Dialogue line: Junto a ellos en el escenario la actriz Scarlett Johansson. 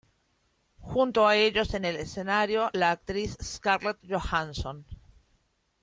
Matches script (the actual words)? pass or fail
pass